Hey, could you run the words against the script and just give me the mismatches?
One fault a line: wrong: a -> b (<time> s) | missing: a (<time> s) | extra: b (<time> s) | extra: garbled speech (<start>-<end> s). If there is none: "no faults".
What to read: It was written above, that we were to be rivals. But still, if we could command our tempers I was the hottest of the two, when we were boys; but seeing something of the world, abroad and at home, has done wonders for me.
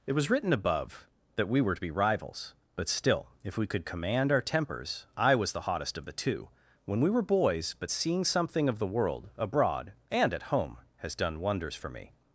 no faults